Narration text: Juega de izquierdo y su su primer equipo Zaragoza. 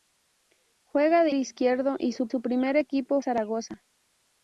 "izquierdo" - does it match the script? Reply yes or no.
yes